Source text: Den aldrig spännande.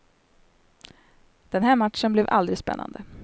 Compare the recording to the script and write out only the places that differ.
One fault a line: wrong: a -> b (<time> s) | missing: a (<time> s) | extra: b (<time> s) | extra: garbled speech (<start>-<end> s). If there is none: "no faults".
extra: här matchen blev (1.6 s)